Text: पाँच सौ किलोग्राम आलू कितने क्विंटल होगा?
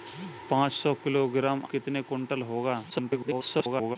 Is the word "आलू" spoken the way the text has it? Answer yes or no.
no